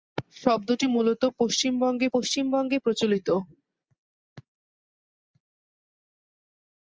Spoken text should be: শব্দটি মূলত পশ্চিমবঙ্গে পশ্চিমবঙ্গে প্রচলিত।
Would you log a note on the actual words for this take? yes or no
no